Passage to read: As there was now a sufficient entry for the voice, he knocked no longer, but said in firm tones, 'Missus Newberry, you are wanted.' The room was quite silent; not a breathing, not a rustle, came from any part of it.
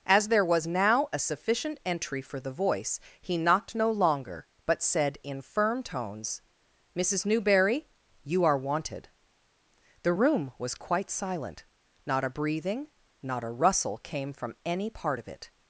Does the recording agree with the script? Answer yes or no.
yes